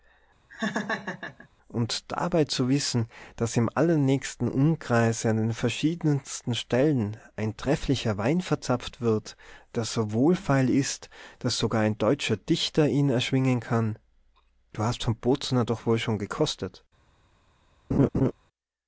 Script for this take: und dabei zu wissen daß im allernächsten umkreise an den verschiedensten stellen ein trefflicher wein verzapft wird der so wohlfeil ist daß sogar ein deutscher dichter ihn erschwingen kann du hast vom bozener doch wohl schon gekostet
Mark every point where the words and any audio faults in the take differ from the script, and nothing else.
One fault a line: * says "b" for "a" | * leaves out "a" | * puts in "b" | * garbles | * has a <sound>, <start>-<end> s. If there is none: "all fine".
* has a laugh, 0.5-1.5 s
* has a laugh, 17.9-18.3 s